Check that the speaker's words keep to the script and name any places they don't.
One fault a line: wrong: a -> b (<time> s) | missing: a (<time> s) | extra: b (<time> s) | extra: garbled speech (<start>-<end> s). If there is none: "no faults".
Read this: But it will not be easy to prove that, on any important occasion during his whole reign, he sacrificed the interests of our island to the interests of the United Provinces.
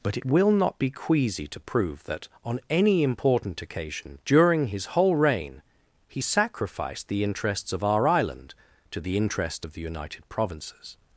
wrong: easy -> queasy (0.9 s)
wrong: interests -> interest (9.2 s)